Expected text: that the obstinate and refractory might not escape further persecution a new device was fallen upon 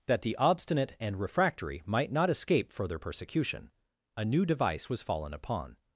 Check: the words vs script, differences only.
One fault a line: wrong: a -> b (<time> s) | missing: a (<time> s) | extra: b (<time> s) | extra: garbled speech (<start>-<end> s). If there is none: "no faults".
no faults